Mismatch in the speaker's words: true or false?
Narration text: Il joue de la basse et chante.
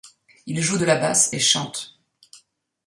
false